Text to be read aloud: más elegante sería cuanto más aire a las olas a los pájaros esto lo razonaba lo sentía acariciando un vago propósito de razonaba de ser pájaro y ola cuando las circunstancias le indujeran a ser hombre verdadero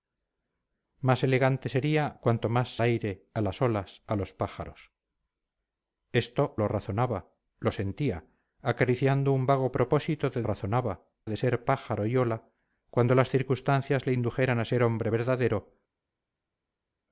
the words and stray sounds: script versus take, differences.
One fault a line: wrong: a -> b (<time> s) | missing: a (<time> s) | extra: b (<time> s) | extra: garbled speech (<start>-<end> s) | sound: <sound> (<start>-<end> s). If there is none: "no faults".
no faults